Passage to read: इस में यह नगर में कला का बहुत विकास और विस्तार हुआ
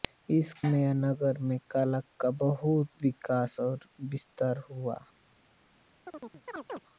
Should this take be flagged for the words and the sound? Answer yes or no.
yes